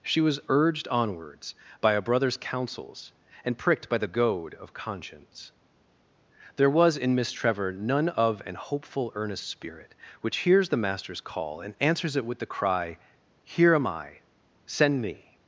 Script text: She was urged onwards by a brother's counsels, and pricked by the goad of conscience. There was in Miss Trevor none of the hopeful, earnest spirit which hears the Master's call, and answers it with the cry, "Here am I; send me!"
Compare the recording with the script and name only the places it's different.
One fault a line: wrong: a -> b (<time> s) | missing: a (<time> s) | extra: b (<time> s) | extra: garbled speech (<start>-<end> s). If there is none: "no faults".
wrong: the -> an (8.4 s)